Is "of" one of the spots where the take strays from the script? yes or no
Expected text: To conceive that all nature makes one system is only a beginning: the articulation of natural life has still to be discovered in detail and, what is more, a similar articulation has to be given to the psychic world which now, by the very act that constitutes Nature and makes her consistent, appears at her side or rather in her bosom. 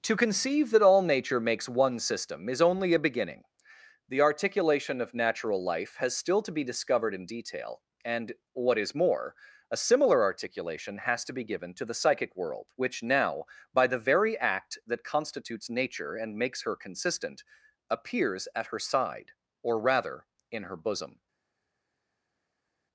no